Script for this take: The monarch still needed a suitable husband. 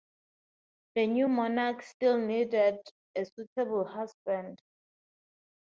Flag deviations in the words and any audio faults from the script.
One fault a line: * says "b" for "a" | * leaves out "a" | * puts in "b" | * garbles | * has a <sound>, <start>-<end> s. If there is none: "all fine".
* puts in "new"